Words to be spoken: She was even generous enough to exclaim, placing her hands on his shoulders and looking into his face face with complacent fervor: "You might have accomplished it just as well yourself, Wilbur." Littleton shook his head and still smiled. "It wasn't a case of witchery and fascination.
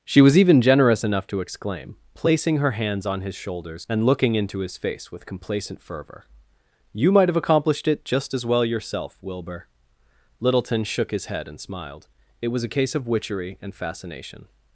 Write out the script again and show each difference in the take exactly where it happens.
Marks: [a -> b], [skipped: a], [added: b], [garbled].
She was even generous enough to exclaim, placing her hands on his shoulders and looking into his face [skipped: face] with complacent fervor: "You might have accomplished it just as well yourself, Wilbur." Littleton shook his head and [skipped: still] smiled. "It [wasn't -> was] a case of witchery and fascination.